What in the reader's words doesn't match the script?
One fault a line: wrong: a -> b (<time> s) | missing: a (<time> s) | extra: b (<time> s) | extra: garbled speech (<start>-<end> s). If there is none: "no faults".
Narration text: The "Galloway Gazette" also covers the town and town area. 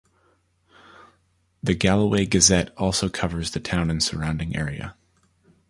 wrong: town -> surrounding (4.0 s)